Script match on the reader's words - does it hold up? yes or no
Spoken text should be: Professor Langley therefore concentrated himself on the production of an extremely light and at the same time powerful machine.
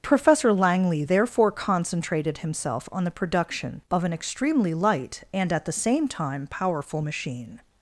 yes